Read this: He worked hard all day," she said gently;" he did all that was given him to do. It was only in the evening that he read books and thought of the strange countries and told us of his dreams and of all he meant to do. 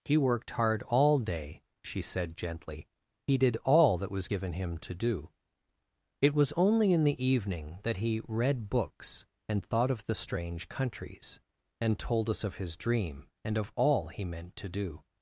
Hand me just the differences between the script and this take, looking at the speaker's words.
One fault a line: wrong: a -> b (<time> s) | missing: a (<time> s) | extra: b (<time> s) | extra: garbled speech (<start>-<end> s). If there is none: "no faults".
wrong: dreams -> dream (12.8 s)